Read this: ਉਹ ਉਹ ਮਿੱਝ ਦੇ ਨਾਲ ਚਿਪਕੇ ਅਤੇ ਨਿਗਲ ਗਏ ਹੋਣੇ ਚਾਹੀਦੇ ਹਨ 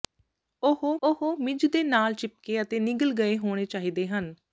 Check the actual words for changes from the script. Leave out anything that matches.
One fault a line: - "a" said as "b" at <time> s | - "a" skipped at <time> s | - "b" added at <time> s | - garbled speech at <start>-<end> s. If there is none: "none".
none